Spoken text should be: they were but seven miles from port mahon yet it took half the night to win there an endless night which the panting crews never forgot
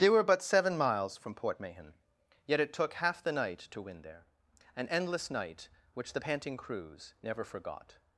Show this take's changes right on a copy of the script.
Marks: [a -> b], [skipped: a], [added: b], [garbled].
they were but seven miles from port mahon yet it took half the night to win there an endless night which the panting crews never forgot